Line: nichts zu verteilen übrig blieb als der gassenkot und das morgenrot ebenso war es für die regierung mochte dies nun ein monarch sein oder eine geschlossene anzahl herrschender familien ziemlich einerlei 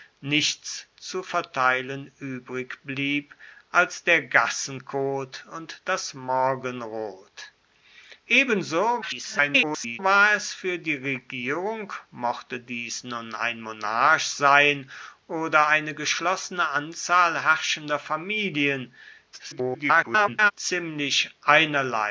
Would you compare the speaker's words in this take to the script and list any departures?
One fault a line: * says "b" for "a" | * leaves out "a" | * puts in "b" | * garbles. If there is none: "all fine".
* garbles
* garbles